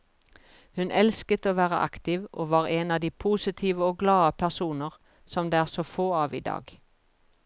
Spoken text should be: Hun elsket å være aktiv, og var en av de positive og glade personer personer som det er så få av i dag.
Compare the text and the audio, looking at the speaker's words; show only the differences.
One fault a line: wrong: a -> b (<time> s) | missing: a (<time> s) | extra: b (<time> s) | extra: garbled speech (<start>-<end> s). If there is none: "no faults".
missing: personer (5.0 s)